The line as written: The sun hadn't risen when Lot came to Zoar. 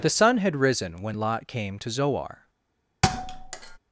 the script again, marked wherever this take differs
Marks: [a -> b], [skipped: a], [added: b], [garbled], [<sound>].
The sun [hadn't -> had] risen when Lot came to Zoar. [thud]